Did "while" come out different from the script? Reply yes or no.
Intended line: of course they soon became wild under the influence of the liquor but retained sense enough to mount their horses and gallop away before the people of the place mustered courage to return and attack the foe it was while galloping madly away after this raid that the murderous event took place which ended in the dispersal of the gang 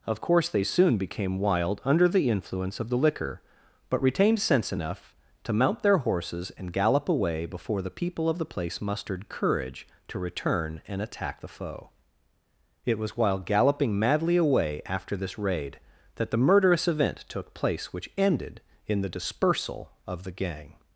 no